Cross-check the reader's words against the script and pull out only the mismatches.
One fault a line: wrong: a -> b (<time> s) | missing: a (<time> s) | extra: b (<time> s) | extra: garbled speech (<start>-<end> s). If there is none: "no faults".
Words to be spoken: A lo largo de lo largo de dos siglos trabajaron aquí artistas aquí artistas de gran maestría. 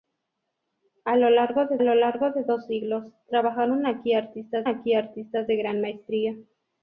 no faults